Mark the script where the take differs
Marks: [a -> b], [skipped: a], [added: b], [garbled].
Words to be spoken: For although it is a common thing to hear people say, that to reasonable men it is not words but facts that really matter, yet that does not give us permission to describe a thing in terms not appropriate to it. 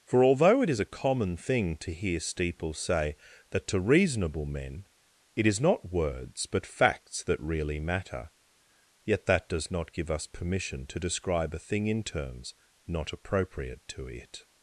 For although it is a common thing to hear [people -> steeple] say, that to reasonable men it is not words but facts that really matter, yet that does not give us permission to describe a thing in terms not appropriate to it.